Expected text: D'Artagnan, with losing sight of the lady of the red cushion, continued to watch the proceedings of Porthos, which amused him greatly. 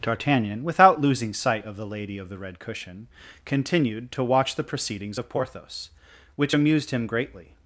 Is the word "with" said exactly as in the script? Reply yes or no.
no